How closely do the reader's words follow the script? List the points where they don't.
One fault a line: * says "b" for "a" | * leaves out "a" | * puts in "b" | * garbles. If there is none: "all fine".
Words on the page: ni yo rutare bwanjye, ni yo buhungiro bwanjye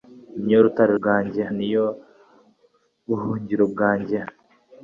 all fine